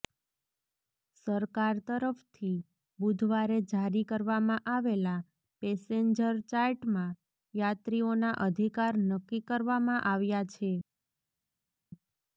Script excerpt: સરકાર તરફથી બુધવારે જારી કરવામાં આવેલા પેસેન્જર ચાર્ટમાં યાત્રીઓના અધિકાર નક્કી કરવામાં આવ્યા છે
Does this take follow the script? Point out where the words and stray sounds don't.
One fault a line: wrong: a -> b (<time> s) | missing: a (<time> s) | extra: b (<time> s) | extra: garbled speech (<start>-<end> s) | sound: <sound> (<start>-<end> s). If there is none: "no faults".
no faults